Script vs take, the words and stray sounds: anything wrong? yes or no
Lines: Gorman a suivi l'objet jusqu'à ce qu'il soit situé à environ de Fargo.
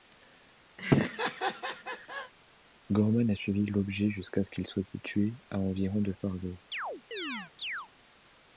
yes